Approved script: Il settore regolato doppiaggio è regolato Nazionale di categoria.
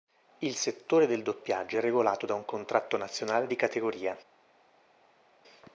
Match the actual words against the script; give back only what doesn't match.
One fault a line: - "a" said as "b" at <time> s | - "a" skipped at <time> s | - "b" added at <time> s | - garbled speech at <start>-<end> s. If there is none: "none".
- "regolato" said as "del" at 1.1 s
- "da un Contratto" added at 2.2 s